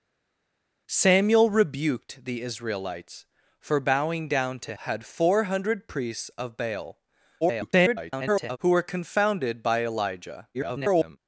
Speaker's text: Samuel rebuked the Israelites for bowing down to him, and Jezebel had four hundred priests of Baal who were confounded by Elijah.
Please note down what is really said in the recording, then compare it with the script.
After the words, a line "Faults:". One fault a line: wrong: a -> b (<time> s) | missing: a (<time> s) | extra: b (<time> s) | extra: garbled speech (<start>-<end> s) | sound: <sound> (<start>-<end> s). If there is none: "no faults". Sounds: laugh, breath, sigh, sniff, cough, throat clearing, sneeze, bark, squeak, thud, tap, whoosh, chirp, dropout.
Samuel rebuked the Israelites for bowing down to had four hundred priests of Baal [garbled] who were confounded by Elijah. [garbled]
Faults:
missing: him and Jezebel (4.8 s)
extra: garbled speech (7.4-8.6 s)
extra: garbled speech (10.5-11.2 s)